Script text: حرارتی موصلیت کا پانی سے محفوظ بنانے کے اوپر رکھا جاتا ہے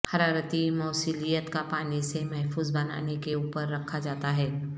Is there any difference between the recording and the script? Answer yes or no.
no